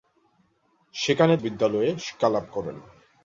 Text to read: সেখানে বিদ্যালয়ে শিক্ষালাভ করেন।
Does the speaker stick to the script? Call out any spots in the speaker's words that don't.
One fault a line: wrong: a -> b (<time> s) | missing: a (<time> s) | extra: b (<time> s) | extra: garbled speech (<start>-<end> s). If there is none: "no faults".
no faults